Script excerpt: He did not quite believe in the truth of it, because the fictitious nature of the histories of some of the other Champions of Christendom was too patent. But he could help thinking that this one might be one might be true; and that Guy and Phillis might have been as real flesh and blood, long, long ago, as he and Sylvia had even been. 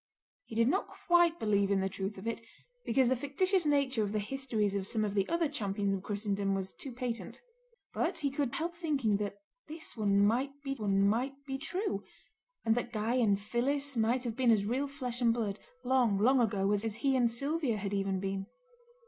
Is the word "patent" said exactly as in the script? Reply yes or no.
yes